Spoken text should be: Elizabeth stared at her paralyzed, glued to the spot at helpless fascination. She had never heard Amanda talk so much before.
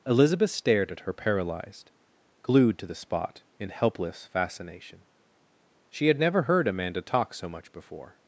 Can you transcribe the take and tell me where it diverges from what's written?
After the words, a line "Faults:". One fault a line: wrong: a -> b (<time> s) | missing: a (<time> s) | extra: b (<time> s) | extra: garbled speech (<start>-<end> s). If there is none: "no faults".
Elizabeth stared at her paralyzed, glued to the spot in helpless fascination. She had never heard Amanda talk so much before.
Faults:
wrong: at -> in (3.6 s)